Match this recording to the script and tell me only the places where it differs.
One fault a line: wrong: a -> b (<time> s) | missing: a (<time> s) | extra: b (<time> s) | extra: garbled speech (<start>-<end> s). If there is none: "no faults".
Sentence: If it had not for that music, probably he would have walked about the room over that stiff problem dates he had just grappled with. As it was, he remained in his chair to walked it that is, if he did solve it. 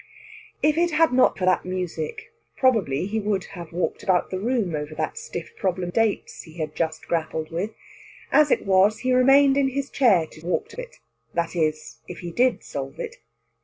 no faults